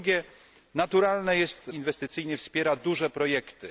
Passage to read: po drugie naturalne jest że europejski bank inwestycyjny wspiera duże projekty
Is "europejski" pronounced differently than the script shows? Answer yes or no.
yes